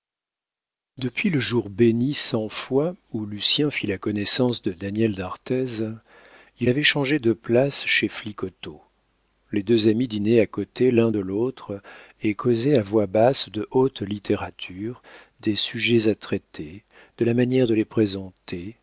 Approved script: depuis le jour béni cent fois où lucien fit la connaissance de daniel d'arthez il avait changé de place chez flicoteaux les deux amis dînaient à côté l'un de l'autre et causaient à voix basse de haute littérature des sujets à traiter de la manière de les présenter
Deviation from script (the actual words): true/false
false